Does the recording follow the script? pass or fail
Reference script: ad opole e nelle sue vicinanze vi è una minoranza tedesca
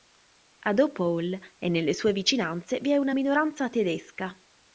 pass